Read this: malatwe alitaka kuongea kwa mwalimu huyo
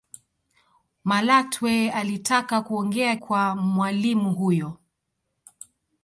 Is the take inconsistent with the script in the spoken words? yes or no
no